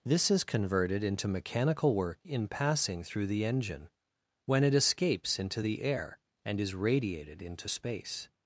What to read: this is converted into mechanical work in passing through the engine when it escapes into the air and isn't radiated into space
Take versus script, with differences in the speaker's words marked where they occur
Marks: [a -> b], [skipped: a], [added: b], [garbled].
this is converted into mechanical work in passing through the engine when it escapes into the air and [isn't -> is] radiated into space